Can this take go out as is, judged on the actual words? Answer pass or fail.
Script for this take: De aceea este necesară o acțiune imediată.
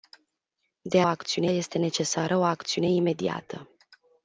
fail